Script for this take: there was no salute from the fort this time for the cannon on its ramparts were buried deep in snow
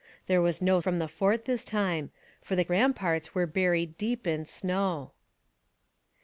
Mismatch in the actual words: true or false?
true